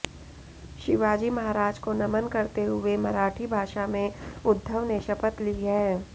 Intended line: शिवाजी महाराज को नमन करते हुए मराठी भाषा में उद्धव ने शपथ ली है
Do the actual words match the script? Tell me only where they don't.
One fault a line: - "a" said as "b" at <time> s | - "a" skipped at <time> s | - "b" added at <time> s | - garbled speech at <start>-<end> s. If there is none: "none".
none